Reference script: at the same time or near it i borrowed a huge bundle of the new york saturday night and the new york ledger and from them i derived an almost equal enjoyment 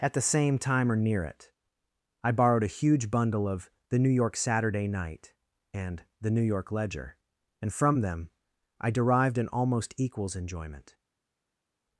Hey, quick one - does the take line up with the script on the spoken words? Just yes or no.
no